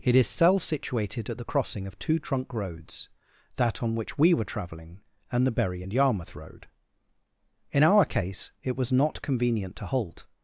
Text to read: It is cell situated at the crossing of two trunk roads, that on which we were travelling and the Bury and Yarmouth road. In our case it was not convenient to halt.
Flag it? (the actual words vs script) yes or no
no